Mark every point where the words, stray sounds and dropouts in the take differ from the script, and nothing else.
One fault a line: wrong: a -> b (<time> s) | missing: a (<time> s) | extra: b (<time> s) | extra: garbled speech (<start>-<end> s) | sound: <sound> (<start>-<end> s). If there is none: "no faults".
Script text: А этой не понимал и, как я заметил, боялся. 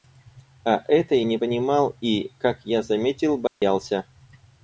sound: dropout (3.5-3.6 s)